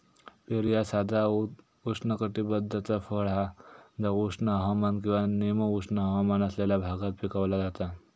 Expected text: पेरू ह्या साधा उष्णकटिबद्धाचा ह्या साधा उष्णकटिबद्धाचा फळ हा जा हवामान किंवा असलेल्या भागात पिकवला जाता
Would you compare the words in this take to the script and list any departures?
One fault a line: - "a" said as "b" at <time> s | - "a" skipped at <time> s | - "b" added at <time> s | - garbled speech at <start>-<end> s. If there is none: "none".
- "ह्या साधा उष्णकटिबद्धाचा" skipped at 3.0 s
- "उष्ण" added at 4.2 s
- "निम उष्ण हवामान" added at 5.3 s